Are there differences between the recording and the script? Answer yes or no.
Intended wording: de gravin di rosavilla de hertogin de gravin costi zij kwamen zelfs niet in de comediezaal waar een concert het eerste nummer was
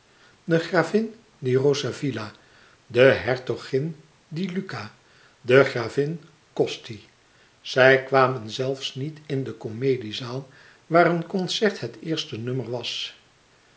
yes